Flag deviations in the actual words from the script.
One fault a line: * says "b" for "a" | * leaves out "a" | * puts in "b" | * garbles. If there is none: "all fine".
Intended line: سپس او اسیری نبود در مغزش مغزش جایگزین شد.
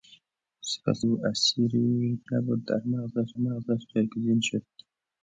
all fine